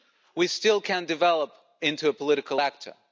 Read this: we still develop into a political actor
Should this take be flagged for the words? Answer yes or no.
yes